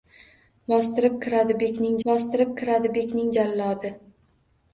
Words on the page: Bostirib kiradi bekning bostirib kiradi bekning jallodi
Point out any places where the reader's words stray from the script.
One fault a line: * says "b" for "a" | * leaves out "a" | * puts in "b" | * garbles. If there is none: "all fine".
all fine